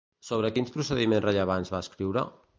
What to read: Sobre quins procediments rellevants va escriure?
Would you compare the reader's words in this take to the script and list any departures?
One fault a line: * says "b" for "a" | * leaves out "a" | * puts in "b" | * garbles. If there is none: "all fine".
all fine